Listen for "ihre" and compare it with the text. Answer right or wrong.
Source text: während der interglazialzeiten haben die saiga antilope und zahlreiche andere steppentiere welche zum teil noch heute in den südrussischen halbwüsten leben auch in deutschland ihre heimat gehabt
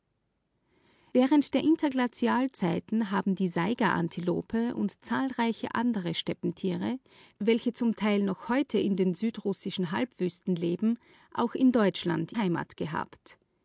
wrong